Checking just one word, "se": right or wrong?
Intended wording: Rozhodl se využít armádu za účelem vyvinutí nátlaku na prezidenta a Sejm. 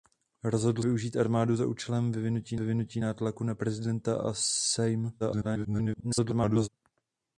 wrong